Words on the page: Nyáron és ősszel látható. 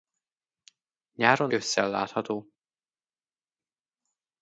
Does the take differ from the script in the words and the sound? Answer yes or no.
yes